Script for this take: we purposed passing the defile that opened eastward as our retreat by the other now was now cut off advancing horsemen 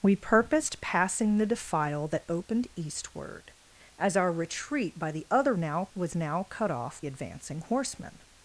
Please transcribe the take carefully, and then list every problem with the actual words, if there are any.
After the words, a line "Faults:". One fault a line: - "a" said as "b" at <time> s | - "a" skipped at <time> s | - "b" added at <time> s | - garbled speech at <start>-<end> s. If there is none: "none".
we purposed passing the defile that opened eastward as our retreat by the other now was now cut off advancing horsemen
Faults:
none